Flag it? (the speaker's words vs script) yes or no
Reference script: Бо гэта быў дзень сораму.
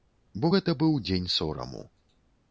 no